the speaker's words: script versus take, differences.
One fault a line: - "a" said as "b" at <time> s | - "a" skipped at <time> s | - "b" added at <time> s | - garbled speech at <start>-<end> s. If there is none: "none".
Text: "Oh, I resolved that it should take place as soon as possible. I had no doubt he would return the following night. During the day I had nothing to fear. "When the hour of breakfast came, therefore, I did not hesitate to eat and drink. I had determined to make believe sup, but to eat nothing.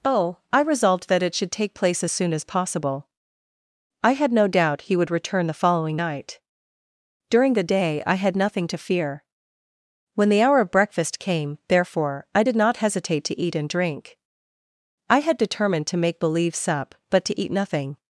none